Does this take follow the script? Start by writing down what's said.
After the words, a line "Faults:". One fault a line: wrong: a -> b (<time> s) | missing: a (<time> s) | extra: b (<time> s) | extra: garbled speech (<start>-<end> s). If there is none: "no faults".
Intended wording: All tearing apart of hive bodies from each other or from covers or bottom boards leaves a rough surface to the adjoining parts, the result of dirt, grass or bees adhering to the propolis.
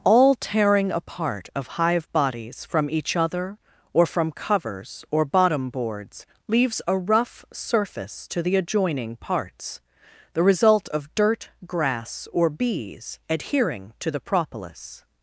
All tearing apart of hive bodies from each other or from covers or bottom boards leaves a rough surface to the adjoining parts, the result of dirt, grass or bees adhering to the propolis.
Faults:
no faults